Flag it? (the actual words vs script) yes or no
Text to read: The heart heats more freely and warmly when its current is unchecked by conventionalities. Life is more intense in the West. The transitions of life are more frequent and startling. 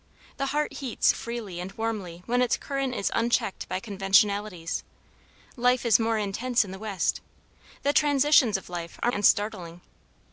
yes